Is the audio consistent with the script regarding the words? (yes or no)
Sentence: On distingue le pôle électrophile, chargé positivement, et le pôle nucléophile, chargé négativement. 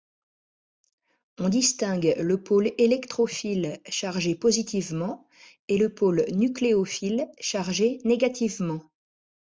yes